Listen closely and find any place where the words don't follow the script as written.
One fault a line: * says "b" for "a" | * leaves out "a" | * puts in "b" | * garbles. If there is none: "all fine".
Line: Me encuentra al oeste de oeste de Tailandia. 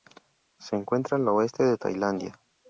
* says "Se" for "Me"
* leaves out "oeste de"